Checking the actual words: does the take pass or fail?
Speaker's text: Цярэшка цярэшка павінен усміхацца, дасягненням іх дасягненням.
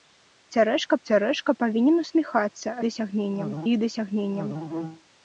pass